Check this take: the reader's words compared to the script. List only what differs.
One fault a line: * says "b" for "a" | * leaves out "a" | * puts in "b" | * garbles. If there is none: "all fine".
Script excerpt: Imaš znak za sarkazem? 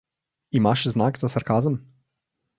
all fine